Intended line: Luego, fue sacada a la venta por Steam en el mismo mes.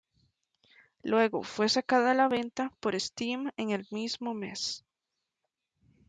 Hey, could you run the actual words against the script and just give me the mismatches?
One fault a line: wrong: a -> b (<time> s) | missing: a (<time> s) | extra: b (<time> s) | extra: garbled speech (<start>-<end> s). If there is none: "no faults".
no faults